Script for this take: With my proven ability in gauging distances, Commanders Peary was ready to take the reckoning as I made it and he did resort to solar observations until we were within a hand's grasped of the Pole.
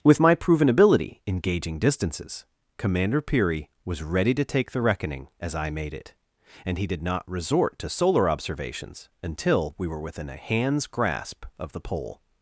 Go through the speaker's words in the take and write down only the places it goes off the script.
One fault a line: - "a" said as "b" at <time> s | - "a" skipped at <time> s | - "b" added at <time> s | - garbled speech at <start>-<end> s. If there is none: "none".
- "Commanders" said as "Commander" at 2.8 s
- "not" added at 7.0 s
- "grasped" said as "grasp" at 10.9 s